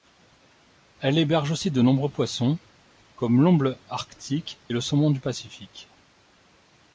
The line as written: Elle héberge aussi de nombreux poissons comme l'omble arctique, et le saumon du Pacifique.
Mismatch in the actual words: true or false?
false